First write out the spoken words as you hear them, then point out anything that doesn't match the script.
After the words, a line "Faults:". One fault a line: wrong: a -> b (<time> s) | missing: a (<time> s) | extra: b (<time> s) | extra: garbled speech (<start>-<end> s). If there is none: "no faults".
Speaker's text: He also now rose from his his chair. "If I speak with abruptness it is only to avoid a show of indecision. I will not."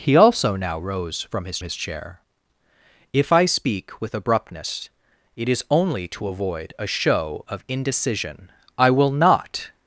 He also now rose from his his chair. "If I speak with abruptness it is only to avoid a show of indecision. I will not."
Faults:
no faults